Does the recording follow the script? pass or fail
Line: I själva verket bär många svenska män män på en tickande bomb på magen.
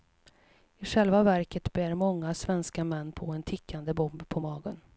fail